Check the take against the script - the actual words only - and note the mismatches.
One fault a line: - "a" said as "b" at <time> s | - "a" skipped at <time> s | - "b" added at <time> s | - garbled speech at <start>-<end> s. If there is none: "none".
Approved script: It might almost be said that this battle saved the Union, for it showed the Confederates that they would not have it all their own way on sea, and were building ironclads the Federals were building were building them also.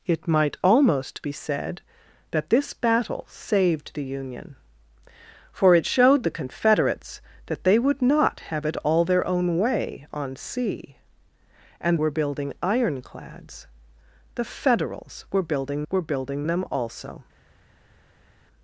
none